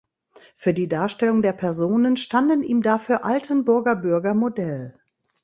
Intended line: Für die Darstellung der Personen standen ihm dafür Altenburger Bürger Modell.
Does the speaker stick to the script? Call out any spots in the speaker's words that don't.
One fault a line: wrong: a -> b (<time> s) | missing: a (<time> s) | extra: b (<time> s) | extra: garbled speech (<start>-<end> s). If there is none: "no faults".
no faults